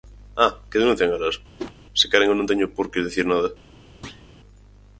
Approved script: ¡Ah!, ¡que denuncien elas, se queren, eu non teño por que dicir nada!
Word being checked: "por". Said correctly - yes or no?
yes